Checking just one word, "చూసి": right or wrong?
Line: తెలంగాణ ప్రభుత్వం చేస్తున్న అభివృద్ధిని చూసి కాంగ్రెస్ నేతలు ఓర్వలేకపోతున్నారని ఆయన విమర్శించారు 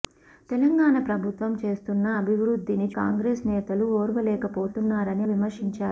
wrong